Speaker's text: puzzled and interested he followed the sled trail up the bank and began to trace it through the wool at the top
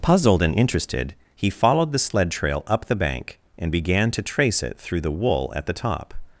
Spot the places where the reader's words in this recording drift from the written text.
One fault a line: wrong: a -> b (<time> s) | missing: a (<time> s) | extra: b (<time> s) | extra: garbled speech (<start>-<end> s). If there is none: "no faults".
no faults